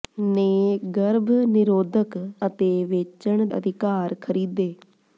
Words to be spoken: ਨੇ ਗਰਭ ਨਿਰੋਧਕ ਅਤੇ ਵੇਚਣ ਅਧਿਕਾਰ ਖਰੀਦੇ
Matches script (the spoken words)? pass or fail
pass